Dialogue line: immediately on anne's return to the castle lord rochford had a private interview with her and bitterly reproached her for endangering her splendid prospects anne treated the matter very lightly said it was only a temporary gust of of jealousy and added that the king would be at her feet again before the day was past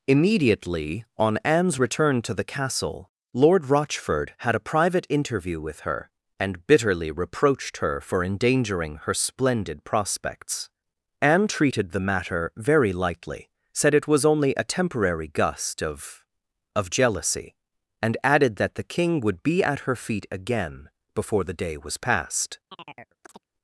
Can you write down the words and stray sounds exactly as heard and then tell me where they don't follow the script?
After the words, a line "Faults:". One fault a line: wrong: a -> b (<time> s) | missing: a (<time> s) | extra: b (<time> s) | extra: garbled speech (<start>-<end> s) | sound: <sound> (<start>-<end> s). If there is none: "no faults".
immediately on anne's return to the castle lord rochford had a private interview with her and bitterly reproached her for endangering her splendid prospects anne treated the matter very lightly said it was only a temporary gust of of jealousy and added that the king would be at her feet again before the day was past
Faults:
sound: chirp (22.7-23.4 s)